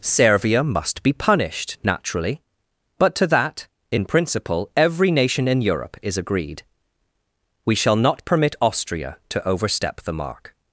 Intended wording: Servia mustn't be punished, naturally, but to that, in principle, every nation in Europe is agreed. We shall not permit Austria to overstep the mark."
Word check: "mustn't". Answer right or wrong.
wrong